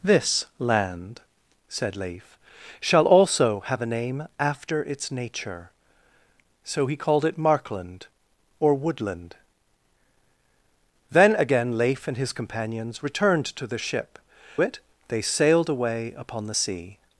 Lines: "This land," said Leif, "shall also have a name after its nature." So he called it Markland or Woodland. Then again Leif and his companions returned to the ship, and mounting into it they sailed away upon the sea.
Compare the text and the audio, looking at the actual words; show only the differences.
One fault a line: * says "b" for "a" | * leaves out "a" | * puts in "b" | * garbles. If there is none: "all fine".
* leaves out "and mounting into"